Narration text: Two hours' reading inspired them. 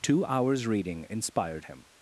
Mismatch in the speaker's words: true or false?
true